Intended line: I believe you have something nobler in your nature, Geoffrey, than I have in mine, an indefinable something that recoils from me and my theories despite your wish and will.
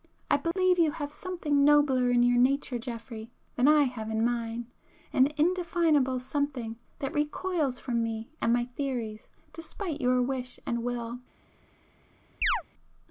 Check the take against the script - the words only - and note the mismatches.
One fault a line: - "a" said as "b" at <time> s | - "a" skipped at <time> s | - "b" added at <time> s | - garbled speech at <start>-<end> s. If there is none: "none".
none